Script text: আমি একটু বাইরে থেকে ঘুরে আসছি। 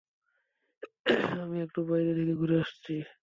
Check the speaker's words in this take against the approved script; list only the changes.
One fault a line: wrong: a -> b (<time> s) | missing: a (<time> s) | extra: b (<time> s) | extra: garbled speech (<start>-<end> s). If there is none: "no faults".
no faults